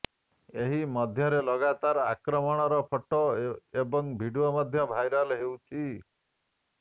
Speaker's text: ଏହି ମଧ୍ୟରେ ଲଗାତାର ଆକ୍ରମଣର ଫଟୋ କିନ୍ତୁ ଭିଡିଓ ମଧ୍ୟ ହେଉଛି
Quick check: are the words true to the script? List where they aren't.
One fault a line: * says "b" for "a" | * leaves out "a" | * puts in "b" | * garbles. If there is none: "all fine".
* says "ଏବଂ" for "କିନ୍ତୁ"
* puts in "ଭାଇରାଲ"